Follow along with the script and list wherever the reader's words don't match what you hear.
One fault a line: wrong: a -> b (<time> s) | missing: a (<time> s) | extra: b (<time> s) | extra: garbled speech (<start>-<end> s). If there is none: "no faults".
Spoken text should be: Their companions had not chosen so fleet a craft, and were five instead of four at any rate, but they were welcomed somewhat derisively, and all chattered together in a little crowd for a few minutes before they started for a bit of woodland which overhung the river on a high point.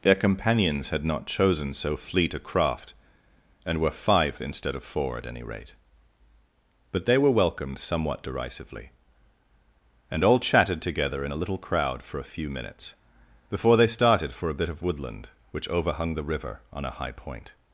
wrong: chattered -> chatted (10.4 s)